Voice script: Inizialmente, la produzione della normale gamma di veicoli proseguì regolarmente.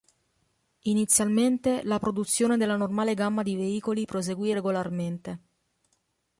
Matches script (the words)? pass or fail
pass